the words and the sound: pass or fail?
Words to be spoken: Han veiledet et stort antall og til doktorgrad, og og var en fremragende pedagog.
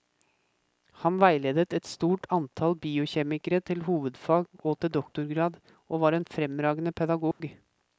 fail